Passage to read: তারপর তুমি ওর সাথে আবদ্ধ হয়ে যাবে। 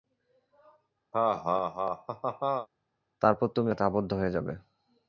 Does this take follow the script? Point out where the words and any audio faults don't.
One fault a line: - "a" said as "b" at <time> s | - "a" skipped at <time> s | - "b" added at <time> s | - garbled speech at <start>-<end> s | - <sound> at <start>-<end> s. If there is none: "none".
- laugh at 1.1-2.7 s
- "ওর" skipped at 3.7 s